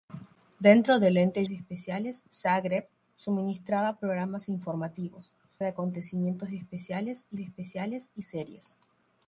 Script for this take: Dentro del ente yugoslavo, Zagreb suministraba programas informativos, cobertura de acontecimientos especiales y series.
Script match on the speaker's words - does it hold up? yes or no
no